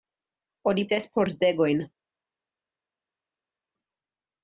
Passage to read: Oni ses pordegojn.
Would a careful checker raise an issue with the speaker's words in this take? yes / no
no